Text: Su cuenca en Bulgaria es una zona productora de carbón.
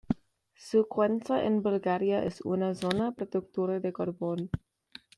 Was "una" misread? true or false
false